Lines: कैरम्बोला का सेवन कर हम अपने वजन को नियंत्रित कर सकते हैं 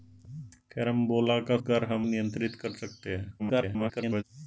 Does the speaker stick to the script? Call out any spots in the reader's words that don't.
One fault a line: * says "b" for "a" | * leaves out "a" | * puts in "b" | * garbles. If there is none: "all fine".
* leaves out "सेवन"
* leaves out "अपने वजन को"
* garbles